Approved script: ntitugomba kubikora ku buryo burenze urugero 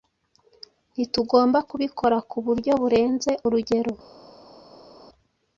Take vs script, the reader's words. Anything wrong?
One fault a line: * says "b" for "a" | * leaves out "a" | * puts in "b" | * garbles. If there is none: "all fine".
all fine